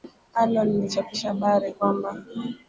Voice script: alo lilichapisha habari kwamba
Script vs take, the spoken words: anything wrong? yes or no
no